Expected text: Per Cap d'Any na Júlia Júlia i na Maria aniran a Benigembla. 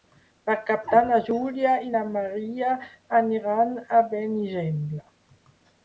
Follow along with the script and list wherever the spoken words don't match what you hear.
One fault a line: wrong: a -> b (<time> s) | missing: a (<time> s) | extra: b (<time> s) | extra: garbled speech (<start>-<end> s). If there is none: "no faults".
missing: Júlia (1.8 s)